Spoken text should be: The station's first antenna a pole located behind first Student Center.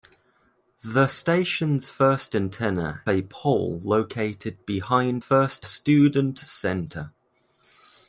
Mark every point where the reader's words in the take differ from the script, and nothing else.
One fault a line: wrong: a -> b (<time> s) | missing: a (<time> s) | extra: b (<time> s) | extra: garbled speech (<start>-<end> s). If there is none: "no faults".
no faults